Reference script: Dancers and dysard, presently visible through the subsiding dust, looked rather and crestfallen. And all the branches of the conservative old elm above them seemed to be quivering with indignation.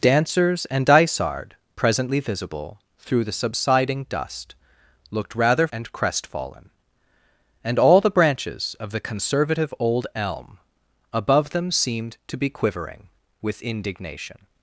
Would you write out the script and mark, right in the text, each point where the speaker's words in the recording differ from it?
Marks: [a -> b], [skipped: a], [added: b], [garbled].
Dancers and dysard, presently visible through the subsiding dust, looked rather and crestfallen. And all the branches of the conservative old elm above them seemed to be quivering with indignation.